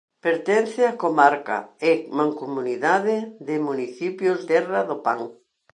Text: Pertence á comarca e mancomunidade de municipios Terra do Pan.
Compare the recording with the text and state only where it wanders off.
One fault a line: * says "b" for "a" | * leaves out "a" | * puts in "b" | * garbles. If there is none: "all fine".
all fine